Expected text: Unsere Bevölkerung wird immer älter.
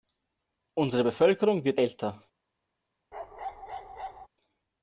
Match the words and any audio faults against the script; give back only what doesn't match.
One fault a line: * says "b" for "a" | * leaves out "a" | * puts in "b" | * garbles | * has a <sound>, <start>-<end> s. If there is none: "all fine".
* leaves out "immer"
* has a bark, 3.1-4.3 s